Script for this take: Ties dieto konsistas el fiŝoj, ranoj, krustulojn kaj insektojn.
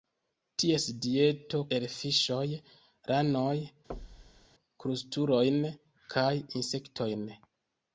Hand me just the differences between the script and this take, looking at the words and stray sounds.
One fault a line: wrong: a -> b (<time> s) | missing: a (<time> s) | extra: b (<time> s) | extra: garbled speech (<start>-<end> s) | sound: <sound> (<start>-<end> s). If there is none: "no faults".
missing: konsistas (1.6 s)
sound: thud (3.9-4.5 s)